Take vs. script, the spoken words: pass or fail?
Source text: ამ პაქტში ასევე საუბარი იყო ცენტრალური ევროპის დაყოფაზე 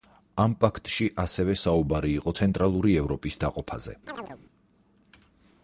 pass